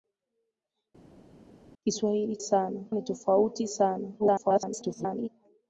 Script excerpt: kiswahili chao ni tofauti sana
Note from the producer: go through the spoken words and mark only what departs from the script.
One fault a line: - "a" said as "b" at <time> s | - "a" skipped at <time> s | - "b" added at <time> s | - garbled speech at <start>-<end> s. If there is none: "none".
- "chao" said as "sana" at 2.4 s
- garbled speech at 4.2-5.3 s